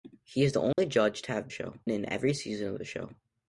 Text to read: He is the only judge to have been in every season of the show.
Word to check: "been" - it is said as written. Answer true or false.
false